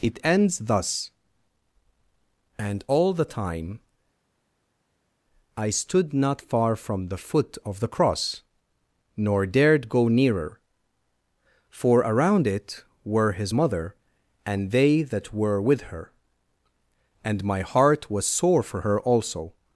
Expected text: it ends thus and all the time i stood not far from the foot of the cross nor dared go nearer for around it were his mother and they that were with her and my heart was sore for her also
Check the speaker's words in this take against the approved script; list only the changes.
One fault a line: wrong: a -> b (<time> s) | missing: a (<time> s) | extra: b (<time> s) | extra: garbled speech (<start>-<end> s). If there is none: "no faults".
no faults